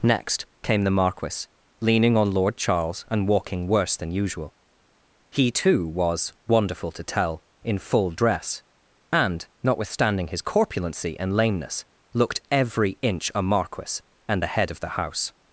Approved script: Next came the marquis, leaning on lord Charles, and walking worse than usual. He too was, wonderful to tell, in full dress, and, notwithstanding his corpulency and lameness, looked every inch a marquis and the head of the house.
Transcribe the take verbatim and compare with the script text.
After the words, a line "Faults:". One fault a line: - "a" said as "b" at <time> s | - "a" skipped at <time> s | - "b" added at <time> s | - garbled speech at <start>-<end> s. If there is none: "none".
Next came the marquis, leaning on lord Charles, and walking worse than usual. He too was, wonderful to tell, in full dress, and, notwithstanding his corpulency and lameness, looked every inch a marquis and the head of the house.
Faults:
none